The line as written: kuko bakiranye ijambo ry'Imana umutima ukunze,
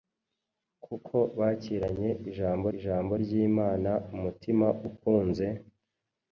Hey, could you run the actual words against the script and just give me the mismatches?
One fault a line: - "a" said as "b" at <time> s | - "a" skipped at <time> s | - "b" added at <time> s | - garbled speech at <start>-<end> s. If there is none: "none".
- "ijambo" added at 2.8 s